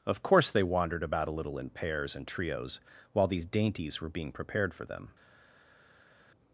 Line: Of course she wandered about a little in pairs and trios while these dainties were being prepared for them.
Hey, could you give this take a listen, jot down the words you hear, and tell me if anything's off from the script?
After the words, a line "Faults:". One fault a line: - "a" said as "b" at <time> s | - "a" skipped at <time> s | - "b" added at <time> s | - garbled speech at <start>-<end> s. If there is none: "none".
Of course they wandered about a little in pairs and trios while these dainties were being prepared for them.
Faults:
- "she" said as "they" at 0.5 s